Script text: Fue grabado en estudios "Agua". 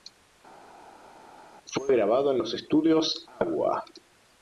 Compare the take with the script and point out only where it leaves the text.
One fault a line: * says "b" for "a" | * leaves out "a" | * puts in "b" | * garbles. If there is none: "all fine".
* puts in "los"